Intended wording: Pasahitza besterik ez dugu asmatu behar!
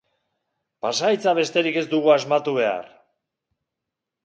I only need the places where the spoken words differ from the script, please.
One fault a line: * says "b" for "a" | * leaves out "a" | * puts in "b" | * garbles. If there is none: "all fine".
all fine